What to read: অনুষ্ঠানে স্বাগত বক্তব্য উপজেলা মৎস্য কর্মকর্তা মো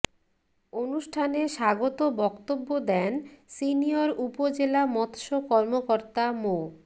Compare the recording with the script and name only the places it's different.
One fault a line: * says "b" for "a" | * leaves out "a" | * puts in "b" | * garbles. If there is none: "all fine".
* puts in "দেন সিনিয়র"